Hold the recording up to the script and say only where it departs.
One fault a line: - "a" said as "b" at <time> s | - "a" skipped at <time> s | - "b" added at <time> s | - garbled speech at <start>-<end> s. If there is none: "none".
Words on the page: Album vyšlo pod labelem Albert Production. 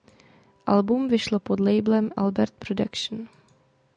none